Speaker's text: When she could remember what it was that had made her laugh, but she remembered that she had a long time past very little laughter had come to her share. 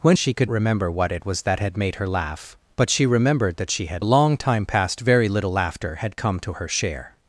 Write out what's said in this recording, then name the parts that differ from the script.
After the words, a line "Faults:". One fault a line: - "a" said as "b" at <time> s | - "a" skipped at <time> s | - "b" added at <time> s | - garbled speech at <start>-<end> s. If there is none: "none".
When she could remember what it was that had made her laugh, but she remembered that she had a long time past very little laughter had come to her share.
Faults:
none